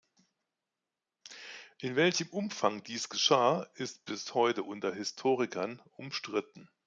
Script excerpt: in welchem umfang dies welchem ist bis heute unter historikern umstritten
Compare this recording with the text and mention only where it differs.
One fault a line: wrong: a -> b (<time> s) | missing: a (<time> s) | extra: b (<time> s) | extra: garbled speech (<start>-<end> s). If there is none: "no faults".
wrong: welchem -> geschah (3.1 s)